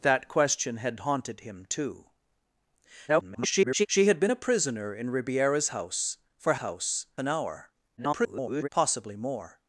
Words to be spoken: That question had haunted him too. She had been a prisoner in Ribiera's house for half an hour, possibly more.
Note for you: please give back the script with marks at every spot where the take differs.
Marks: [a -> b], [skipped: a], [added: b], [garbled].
That question had haunted him too. [garbled] She had been a prisoner in Ribiera's house for [half -> house] an hour, [garbled] possibly more.